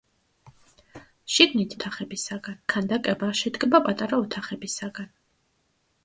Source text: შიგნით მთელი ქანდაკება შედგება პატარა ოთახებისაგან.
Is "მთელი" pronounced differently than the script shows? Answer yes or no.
yes